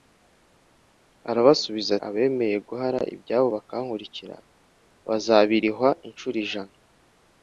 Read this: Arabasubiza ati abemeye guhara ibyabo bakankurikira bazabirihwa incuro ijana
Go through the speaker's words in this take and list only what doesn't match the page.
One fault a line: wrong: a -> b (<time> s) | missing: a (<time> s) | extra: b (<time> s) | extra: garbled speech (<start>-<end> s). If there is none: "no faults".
missing: ati (1.9 s)